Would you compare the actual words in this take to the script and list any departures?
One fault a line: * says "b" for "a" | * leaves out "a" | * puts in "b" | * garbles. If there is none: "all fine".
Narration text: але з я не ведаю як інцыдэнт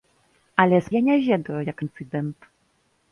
all fine